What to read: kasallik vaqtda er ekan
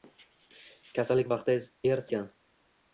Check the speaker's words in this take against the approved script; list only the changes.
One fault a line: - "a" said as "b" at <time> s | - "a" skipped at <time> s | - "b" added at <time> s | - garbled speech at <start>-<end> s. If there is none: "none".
none